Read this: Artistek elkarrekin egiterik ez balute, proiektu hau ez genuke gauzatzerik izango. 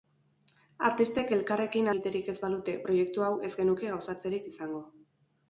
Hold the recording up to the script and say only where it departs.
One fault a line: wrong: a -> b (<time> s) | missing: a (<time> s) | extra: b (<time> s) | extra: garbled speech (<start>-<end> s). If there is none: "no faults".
no faults